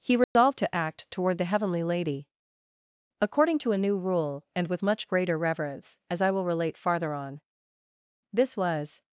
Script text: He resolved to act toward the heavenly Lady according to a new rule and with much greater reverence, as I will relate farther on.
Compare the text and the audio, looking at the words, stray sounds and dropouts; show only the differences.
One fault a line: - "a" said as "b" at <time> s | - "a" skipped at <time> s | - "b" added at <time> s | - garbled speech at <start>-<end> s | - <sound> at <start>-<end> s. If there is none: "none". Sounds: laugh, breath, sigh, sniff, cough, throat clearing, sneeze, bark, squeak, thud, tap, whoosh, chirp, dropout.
- dropout at 0.2-0.4 s
- "This was" added at 8.3 s